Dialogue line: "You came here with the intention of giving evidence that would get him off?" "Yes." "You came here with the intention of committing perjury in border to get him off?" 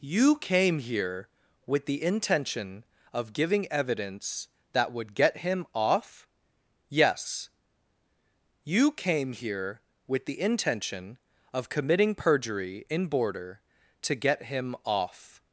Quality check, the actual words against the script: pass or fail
pass